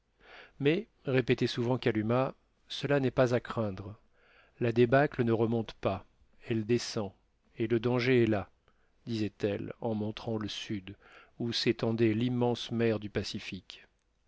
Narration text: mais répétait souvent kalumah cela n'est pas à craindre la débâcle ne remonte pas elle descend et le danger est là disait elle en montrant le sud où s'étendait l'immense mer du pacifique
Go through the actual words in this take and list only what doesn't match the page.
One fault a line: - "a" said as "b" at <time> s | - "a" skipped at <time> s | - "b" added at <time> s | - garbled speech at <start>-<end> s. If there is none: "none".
none